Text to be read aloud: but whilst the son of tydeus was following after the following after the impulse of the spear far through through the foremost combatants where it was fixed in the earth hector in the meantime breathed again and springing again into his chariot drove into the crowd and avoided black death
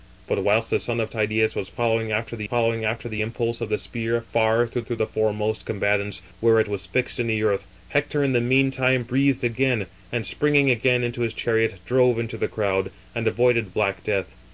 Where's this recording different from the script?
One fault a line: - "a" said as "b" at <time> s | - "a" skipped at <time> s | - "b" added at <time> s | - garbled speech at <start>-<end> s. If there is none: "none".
none